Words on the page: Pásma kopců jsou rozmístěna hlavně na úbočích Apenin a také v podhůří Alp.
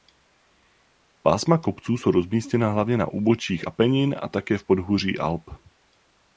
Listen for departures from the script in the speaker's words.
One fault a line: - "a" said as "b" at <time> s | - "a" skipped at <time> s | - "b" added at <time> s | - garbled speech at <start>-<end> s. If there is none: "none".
none